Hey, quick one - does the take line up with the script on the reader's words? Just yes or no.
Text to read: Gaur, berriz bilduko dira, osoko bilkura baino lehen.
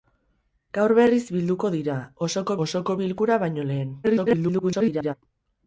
no